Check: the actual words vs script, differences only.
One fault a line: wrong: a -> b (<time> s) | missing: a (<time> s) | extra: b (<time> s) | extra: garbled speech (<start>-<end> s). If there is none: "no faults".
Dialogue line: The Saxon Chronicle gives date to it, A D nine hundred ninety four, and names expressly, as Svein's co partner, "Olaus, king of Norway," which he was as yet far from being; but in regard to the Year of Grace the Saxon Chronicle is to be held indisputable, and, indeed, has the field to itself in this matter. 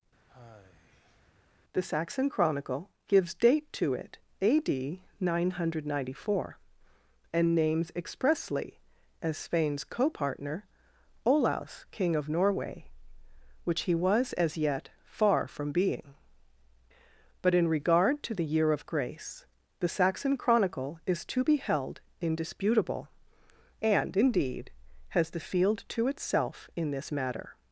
no faults